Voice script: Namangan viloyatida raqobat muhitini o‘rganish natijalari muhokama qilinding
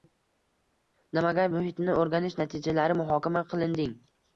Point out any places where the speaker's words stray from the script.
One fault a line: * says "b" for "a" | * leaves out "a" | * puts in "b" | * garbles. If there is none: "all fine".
* leaves out "viloyatida raqobat"